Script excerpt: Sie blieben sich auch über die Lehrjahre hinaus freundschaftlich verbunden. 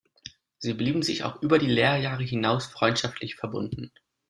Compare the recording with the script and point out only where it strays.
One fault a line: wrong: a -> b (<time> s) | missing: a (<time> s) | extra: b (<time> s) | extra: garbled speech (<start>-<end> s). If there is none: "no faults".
no faults